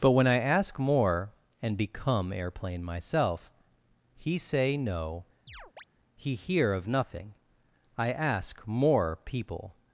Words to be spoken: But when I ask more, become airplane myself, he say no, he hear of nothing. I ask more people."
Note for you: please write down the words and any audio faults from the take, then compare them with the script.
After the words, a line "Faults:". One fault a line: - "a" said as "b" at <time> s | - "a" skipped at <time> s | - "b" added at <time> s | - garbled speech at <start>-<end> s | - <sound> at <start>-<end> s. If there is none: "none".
But when I ask more, and become airplane myself, he say no, he hear of nothing. I ask more people."
Faults:
- "and" added at 1.6 s
- chirp at 5.5-5.8 s